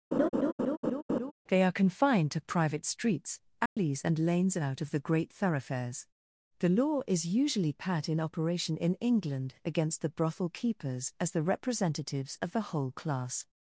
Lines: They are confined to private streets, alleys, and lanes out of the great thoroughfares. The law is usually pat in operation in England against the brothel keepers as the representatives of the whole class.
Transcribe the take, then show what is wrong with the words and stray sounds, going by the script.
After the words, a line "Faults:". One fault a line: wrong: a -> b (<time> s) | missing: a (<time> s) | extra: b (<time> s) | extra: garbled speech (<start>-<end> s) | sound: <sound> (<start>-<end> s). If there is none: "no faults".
They are confined to private streets, alleys, and lanes out of the great thoroughfares. The law is usually pat in operation in England against the brothel keepers as the representatives of the whole class.
Faults:
sound: laugh (0.1-1.3 s)
sound: dropout (3.7-3.8 s)